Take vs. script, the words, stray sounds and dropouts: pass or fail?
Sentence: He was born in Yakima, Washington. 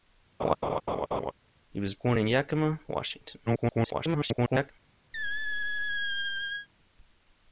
fail